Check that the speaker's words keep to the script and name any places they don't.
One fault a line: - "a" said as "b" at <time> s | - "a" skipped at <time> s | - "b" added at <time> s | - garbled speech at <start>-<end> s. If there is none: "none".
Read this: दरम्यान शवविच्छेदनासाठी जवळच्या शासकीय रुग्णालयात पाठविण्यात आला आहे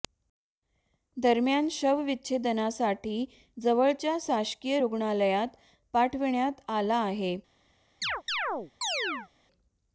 none